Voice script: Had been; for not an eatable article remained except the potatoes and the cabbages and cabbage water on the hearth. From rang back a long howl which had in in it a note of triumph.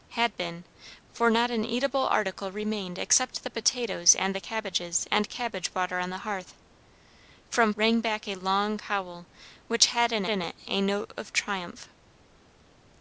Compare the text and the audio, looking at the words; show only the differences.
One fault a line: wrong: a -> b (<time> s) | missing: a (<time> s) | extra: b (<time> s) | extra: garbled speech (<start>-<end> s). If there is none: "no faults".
no faults